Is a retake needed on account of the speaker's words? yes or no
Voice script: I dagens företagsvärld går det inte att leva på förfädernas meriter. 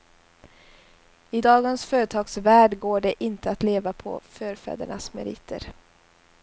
no